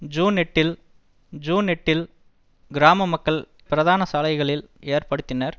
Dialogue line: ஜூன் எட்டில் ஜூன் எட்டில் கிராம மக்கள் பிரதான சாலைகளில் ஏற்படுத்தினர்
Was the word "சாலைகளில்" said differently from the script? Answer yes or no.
no